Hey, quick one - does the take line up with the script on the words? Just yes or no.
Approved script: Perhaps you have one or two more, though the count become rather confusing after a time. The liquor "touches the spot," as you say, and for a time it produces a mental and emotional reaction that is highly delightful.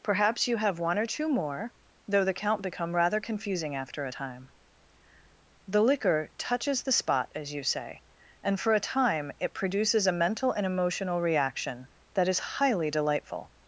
yes